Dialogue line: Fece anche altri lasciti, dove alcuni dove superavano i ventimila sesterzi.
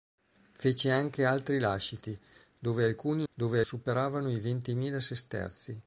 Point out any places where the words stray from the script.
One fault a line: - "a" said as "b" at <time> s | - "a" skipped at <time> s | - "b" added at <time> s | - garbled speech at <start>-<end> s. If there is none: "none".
none